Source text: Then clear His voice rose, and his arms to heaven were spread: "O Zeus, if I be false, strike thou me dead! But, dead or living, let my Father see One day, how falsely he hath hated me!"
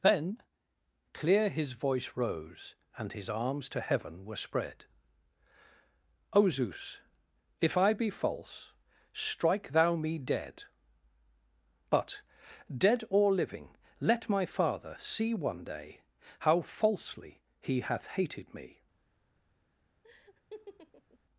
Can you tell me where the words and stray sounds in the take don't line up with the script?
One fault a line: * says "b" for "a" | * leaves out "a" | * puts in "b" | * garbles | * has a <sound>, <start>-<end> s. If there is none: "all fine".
* has a laugh, 20.0-21.2 s